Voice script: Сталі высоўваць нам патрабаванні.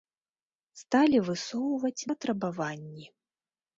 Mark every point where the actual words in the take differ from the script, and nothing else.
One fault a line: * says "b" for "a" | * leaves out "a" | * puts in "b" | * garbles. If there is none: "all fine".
* leaves out "нам"